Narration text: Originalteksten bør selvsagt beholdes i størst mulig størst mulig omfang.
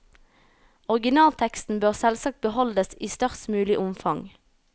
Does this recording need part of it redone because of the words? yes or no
yes